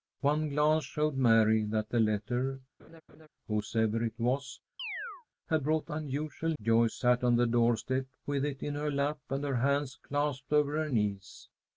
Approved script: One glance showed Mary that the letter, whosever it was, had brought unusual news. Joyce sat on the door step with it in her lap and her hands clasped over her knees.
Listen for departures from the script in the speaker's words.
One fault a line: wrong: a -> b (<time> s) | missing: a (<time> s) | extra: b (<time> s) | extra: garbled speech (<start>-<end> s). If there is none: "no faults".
missing: news (6.5 s)